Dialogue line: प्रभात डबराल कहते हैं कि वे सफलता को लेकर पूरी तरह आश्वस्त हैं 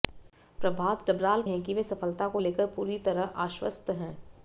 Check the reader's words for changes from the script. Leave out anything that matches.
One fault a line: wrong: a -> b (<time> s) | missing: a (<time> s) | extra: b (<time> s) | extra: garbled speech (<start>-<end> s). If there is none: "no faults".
missing: कहते (1.4 s)